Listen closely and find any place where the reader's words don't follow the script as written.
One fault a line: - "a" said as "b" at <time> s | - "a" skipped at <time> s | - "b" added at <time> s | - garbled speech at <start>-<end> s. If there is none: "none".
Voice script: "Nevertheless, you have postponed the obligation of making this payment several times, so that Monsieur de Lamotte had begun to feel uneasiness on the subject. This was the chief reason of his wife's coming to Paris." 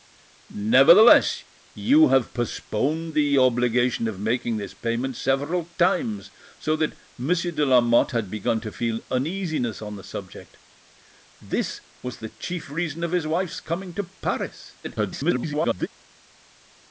- garbled speech at 14.8-15.9 s